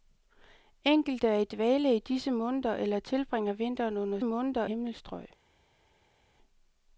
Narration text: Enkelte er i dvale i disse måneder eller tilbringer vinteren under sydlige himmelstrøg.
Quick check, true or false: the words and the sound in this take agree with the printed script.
false